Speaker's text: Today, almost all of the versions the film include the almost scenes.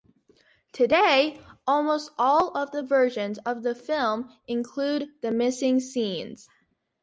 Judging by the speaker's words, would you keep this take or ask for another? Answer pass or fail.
fail